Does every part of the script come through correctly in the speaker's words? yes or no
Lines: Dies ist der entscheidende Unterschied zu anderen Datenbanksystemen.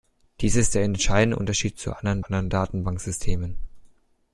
no